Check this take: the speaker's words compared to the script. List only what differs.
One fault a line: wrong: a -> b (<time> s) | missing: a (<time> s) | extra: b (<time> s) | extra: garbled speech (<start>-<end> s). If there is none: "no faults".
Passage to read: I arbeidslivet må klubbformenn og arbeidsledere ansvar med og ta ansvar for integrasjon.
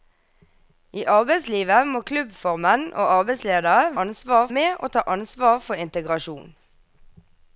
no faults